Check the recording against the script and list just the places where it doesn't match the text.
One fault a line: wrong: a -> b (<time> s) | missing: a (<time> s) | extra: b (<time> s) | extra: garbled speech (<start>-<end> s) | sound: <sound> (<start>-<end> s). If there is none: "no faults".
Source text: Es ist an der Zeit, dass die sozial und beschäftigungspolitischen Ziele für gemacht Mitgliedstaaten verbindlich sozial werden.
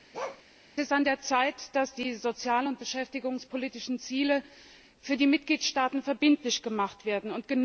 sound: bark (0.1-0.4 s)
wrong: gemacht -> die (5.2 s)
wrong: sozial -> gemacht (6.6 s)